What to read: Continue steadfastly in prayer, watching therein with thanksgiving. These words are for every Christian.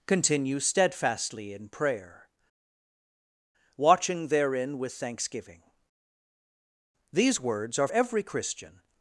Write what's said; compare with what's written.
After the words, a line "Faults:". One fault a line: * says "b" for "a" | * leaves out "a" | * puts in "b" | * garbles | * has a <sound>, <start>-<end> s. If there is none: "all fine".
Continue steadfastly in prayer, watching therein with thanksgiving. These words are every Christian.
Faults:
* leaves out "for"